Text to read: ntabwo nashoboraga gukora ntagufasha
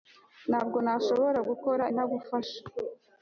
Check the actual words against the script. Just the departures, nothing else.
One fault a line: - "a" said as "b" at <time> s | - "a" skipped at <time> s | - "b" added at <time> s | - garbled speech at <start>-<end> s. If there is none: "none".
none